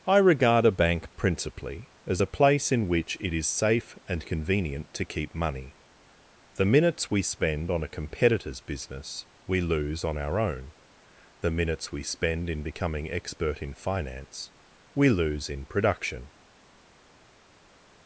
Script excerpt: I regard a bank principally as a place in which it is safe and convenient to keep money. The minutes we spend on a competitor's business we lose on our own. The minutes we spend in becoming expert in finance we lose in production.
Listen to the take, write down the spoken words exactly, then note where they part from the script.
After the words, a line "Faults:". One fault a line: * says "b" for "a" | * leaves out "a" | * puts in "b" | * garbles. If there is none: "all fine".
I regard a bank principally as a place in which it is safe and convenient to keep money. The minutes we spend on a competitor's business we lose on our own. The minutes we spend in becoming expert in finance we lose in production.
Faults:
all fine